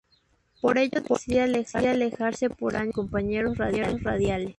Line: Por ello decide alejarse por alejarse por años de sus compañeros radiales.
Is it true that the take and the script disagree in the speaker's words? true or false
true